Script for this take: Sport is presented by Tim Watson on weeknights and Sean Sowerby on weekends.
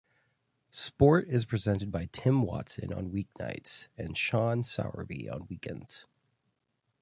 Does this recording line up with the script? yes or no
yes